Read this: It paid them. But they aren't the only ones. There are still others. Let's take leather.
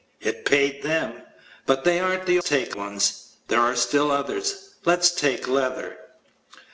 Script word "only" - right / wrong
wrong